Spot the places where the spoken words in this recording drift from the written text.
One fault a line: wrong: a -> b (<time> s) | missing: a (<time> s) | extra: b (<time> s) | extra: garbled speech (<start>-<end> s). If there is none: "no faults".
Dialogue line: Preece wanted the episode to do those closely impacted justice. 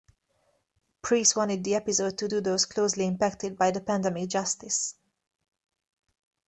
extra: by the pandemic (3.6 s)